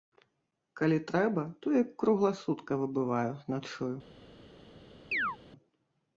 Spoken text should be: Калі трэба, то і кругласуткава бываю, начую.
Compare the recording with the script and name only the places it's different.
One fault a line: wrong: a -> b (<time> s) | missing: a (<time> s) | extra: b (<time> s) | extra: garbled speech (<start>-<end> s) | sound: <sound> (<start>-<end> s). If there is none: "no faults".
sound: chirp (5.1-5.4 s)